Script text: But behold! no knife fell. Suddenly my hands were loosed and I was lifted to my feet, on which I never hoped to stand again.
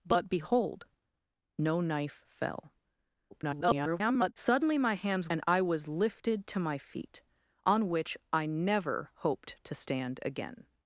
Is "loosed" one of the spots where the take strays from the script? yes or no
yes